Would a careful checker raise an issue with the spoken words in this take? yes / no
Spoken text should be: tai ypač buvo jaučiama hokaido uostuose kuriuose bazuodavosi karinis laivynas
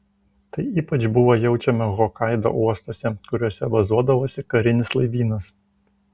no